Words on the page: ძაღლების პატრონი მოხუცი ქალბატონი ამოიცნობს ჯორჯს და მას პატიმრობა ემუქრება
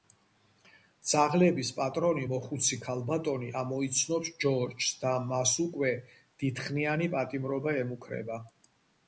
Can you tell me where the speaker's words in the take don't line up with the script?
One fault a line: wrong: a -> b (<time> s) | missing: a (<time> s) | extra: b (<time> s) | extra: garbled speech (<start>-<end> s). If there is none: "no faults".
extra: უკვე დიდხნიანი (5.7 s)